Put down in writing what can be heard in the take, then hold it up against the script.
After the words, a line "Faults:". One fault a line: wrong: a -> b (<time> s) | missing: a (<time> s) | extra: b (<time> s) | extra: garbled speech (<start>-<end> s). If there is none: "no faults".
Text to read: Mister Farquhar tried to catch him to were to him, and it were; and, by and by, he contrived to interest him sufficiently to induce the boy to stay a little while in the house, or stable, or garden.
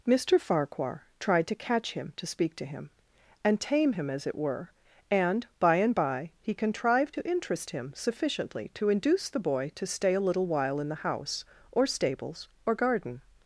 Mister Farquhar tried to catch him to speak to him, and tame him as it were; and, by and by, he contrived to interest him sufficiently to induce the boy to stay a little while in the house, or stables, or garden.
Faults:
wrong: were -> speak (2.2 s)
extra: tame him as (3.6 s)
wrong: stable -> stables (11.9 s)